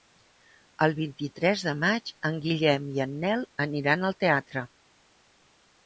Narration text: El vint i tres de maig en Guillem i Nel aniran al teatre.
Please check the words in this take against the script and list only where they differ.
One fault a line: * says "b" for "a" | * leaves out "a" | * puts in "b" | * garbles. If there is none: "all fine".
* puts in "en"